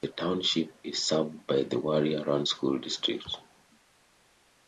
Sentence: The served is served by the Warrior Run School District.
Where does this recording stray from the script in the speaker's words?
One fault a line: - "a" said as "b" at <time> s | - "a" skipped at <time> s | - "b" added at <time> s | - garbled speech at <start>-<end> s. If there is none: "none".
- "served" said as "township" at 0.1 s